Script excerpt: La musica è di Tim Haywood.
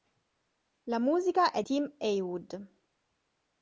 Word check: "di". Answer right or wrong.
wrong